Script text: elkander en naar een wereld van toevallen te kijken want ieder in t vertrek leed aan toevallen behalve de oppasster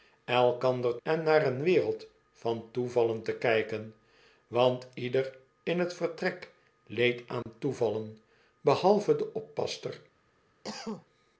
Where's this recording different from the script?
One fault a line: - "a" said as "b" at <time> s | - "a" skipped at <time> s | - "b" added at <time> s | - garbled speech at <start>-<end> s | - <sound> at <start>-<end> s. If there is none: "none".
- dropout at 7.4-7.5 s
- cough at 10.6-11.1 s